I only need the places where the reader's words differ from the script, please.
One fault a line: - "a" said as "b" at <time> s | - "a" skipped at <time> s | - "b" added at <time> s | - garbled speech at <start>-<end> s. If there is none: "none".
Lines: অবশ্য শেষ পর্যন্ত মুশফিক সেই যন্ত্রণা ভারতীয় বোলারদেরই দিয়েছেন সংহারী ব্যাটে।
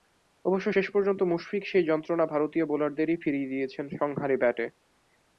- "ফিরিয়ে" added at 3.2 s